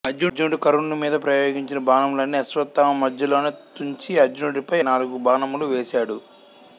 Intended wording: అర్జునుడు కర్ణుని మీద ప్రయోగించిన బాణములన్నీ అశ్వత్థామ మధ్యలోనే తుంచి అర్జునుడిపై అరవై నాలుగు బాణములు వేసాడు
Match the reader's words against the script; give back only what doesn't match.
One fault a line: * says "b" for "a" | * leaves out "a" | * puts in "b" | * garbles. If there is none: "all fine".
* leaves out "అరవై"